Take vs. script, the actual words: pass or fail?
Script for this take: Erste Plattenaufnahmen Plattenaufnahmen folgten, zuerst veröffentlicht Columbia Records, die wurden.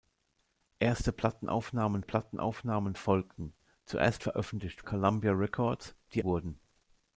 pass